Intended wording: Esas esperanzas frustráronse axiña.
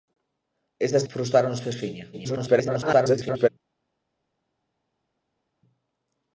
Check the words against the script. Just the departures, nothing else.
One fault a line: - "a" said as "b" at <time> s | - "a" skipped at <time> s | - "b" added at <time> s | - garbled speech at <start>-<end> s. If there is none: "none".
- "esperanzas" skipped at 1.1 s
- garbled speech at 2.1-3.5 s